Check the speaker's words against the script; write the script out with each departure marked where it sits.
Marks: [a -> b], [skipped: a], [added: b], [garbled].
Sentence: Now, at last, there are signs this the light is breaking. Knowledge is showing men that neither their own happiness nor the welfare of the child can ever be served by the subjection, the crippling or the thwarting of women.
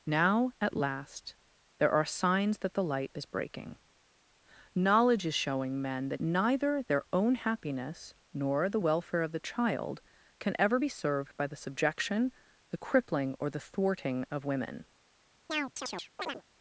Now, at last, there are signs [this -> that] the light is breaking. Knowledge is showing men that neither their own happiness nor the welfare of the child can ever be served by the subjection, the crippling or the thwarting of women.